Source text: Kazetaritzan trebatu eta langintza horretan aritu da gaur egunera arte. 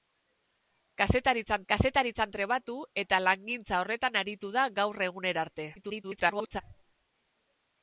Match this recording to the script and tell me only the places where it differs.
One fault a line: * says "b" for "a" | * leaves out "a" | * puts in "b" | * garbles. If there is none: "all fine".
* puts in "kazetaritzan"
* garbles